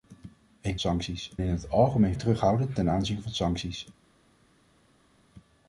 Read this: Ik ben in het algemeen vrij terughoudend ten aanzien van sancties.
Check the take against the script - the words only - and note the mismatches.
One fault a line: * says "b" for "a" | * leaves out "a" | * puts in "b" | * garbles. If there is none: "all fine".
* says "sancties" for "ben"
* leaves out "vrij"